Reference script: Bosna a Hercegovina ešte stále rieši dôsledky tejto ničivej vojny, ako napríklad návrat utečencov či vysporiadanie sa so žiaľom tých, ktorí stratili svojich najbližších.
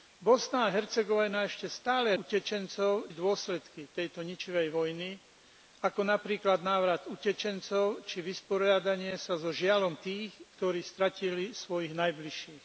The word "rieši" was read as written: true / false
false